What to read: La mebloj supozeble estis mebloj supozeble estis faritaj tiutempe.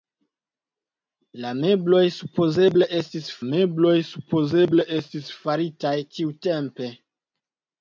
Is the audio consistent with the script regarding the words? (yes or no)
yes